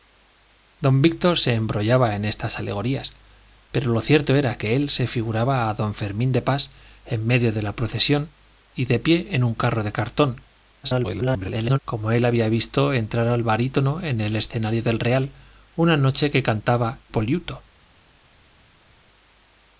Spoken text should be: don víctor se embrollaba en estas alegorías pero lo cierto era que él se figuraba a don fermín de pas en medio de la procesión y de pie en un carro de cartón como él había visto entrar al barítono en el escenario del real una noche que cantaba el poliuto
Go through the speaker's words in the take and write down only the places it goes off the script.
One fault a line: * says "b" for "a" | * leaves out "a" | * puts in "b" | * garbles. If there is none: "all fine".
* garbles
* leaves out "el"